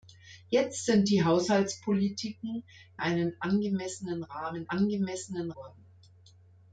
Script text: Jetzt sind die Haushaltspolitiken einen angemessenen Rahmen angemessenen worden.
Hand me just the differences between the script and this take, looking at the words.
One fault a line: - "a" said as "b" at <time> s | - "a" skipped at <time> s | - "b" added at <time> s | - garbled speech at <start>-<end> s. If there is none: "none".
none